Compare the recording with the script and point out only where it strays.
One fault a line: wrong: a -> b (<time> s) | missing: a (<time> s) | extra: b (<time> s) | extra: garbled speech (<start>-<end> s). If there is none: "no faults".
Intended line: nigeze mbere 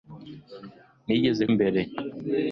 no faults